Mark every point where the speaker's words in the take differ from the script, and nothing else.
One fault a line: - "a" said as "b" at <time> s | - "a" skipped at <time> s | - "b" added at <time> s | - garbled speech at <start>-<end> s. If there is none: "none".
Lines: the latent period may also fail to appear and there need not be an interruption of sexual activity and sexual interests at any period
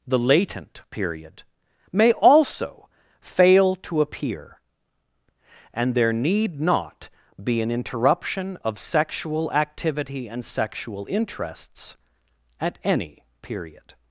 none